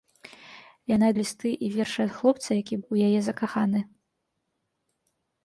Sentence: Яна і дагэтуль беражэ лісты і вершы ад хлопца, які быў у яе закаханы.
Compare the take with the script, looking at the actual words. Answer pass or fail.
fail